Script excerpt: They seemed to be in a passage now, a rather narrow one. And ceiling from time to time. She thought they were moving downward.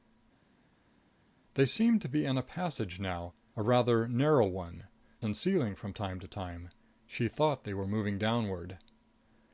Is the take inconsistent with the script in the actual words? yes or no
no